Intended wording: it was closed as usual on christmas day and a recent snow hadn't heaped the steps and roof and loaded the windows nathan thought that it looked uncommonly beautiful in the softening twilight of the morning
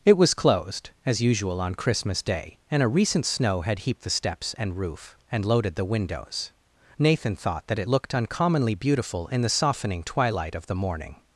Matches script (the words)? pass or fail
fail